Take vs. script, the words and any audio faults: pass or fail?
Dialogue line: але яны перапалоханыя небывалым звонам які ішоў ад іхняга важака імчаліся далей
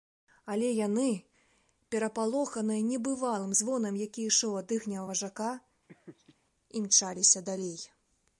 fail